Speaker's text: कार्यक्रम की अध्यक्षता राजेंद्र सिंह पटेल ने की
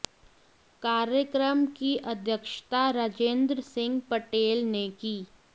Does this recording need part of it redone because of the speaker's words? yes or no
no